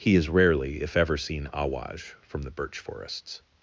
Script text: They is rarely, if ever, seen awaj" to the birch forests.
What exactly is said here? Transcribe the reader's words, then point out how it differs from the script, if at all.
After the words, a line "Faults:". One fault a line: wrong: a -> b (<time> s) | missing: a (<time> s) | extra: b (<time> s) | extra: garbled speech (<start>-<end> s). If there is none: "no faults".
He is rarely, if ever, seen awaj" from the birch forests.
Faults:
wrong: They -> He (0.0 s)
wrong: to -> from (2.2 s)